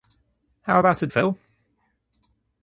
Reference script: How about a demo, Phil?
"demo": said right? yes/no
no